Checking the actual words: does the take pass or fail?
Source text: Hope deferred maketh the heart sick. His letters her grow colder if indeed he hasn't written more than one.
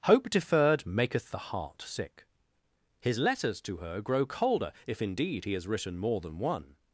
fail